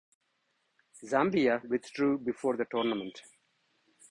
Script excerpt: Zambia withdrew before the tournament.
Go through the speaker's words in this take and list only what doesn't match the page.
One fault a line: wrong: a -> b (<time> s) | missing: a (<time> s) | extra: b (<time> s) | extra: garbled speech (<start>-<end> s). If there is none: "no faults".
no faults